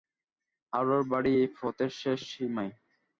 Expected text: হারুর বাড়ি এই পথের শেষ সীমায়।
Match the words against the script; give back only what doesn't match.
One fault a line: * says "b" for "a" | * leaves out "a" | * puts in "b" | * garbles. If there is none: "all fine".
all fine